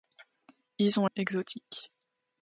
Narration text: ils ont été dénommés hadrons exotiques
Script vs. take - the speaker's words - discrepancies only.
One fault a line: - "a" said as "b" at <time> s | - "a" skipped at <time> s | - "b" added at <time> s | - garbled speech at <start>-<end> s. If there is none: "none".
- "été dénommés hadrons" skipped at 1.1 s